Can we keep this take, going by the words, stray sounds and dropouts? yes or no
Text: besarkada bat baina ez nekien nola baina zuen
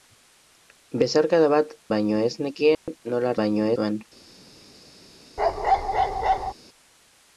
no